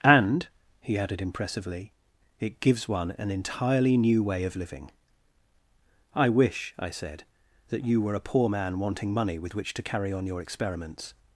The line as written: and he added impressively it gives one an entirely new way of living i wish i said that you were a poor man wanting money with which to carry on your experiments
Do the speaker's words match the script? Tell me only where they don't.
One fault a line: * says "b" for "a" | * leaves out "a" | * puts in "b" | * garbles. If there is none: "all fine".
all fine